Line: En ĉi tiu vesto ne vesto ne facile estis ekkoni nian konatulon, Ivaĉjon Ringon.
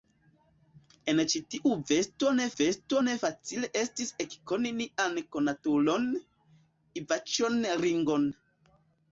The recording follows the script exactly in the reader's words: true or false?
true